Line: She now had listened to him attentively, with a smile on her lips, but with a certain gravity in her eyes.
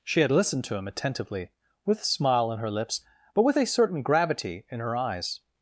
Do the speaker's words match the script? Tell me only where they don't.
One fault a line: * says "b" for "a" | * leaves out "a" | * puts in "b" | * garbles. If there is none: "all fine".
* leaves out "now"